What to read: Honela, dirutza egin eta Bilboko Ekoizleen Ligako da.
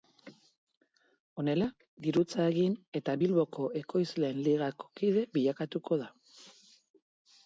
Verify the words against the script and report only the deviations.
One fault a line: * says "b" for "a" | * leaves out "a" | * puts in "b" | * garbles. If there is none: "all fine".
* puts in "kide bilakatuko"